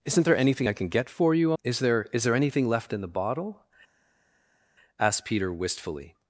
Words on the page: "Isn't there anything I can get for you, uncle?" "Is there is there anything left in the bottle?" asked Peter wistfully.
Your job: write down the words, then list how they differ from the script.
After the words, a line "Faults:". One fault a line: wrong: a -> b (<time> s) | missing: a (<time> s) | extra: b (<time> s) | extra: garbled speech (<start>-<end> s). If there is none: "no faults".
"Isn't there anything I can get for you?" "Is there is there anything left in the bottle?" asked Peter wistfully.
Faults:
missing: uncle (1.5 s)